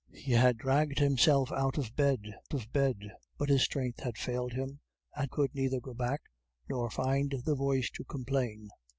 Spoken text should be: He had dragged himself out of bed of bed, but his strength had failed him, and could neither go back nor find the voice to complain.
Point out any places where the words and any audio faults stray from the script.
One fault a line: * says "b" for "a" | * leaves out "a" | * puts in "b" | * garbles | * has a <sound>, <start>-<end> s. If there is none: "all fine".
all fine